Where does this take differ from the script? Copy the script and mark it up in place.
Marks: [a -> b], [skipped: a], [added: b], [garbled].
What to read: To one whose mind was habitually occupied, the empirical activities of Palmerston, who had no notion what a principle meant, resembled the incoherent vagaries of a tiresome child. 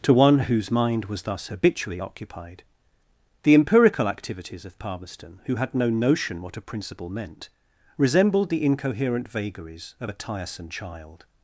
To one whose mind was [added: thus] habitually occupied, the empirical activities of Palmerston, who had no notion what a principle meant, resembled the incoherent vagaries of a tiresome child.